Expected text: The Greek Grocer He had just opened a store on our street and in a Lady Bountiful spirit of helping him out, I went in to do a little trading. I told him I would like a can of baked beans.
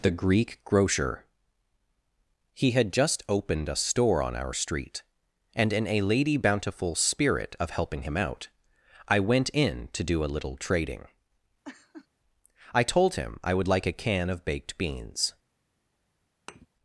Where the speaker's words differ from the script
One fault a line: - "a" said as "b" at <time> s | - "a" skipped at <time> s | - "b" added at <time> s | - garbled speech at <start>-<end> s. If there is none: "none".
none